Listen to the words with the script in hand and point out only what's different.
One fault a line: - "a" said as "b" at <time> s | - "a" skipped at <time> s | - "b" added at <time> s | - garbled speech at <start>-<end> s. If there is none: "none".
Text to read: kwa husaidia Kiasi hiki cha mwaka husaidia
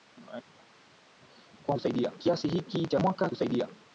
none